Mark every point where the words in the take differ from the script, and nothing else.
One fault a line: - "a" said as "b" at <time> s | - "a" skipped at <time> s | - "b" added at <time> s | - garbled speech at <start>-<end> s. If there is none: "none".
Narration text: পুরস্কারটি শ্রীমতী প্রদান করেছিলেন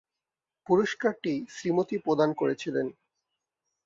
none